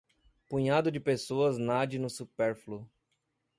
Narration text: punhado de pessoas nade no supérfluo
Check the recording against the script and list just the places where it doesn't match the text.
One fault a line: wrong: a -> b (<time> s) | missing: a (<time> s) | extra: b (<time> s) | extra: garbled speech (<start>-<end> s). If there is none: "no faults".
no faults